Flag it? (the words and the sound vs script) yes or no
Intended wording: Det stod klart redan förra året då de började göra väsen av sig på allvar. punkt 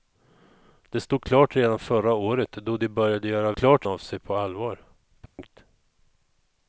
yes